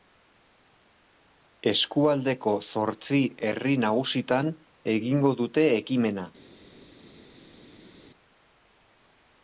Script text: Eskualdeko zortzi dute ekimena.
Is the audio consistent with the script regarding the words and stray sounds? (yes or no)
no